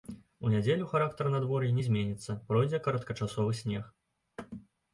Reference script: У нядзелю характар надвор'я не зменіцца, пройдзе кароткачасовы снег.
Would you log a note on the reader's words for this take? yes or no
no